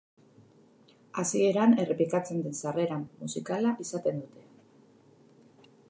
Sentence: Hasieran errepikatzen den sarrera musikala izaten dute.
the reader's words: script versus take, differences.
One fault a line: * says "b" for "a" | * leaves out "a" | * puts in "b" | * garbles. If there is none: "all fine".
all fine